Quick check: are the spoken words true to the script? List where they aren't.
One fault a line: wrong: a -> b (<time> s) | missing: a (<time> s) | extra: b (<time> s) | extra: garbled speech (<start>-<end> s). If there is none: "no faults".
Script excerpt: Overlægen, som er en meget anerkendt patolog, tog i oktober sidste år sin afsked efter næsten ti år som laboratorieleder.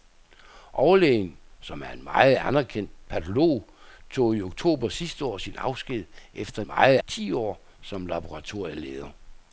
wrong: næsten -> meget (6.7 s)